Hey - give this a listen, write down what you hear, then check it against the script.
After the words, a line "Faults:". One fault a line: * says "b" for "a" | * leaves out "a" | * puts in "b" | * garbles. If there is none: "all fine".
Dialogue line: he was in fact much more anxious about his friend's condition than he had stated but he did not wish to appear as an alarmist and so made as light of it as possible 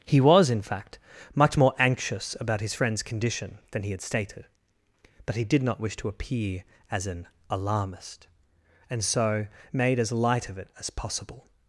he was in fact much more anxious about his friend's condition than he had stated but he did not wish to appear as an alarmist and so made as light of it as possible
Faults:
all fine